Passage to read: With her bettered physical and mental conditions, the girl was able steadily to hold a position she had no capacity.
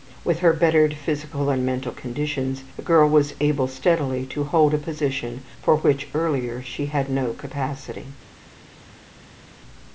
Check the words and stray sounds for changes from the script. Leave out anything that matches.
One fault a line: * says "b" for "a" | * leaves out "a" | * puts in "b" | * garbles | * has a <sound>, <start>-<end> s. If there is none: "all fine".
* puts in "for which earlier"